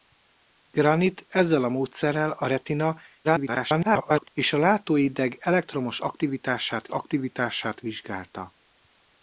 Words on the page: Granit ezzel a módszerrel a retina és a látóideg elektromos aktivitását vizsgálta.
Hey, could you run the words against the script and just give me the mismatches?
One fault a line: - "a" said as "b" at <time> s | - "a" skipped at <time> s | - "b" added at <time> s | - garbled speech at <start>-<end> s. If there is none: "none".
- garbled speech at 3.2-4.3 s
- "aktivitását" added at 6.9 s